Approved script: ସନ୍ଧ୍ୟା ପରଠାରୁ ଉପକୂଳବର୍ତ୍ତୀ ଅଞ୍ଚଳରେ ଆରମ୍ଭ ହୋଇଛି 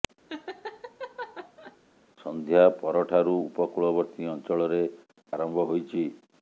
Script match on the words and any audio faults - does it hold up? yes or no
no